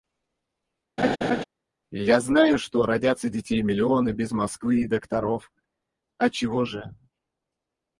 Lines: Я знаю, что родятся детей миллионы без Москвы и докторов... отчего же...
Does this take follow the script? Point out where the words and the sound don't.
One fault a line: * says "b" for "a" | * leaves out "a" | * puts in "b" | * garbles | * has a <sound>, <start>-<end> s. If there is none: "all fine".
* has a laugh, 1.0-1.4 s